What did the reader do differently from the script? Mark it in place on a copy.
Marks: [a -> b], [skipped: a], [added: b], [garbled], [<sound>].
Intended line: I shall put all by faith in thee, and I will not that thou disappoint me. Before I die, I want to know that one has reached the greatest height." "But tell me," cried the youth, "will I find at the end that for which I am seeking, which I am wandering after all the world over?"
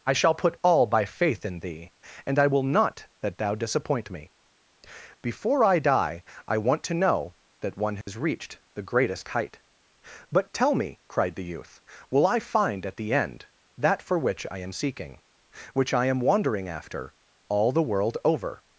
I shall put all by faith in thee, and I will not that thou disappoint me. Before I die, I want to know that one has [dropout] reached the greatest height." "But tell me," cried the youth, "will I find at the end that for which I am seeking, which I am wandering after all the world over?"